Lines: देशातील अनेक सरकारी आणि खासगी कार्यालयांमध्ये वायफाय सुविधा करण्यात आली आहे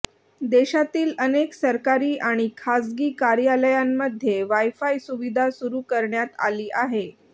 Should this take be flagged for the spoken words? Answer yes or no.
yes